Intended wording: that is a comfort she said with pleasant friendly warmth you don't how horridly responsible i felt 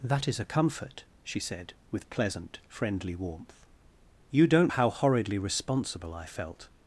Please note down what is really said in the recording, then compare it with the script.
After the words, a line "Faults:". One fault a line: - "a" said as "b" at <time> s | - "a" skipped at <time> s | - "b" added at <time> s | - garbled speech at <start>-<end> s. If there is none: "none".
that is a comfort she said with pleasant friendly warmth you don't how horridly responsible i felt
Faults:
none